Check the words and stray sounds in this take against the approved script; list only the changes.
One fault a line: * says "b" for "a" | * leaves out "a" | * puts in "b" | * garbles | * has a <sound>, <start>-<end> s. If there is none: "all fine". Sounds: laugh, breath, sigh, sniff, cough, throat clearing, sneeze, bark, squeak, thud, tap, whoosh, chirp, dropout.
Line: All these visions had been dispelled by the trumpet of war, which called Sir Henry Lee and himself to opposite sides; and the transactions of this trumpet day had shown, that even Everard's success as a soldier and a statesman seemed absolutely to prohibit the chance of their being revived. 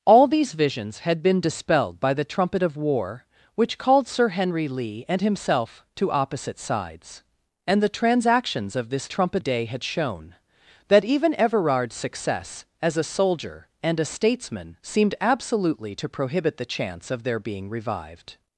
all fine